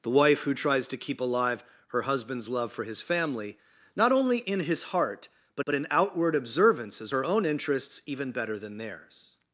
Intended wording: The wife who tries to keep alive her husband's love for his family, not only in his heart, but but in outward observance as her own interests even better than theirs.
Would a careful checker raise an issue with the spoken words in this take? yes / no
no